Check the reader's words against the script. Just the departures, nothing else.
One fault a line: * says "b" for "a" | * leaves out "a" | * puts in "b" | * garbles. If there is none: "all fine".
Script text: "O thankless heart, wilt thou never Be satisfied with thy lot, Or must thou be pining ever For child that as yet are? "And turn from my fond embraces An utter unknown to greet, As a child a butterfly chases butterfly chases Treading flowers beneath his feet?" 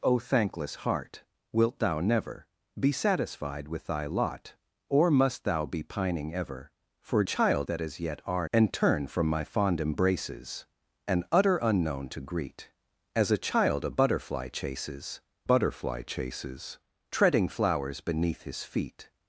all fine